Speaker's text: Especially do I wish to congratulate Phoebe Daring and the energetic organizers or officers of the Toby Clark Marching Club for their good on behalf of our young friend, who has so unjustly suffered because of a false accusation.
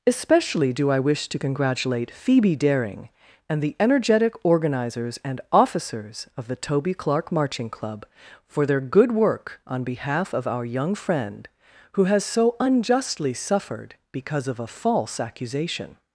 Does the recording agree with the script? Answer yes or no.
no